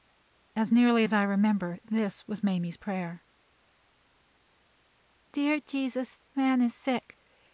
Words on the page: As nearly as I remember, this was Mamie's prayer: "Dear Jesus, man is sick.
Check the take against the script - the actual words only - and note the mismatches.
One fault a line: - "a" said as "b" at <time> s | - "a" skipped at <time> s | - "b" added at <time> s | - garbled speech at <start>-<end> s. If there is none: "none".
none